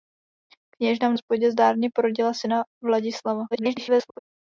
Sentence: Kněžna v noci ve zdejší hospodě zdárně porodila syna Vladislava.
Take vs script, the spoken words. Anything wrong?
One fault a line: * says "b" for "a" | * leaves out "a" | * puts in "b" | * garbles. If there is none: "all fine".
* leaves out "noci ve zdejší"
* garbles